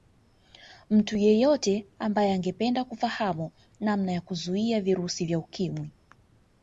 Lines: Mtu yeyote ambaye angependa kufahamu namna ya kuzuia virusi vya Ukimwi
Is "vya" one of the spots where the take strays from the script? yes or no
no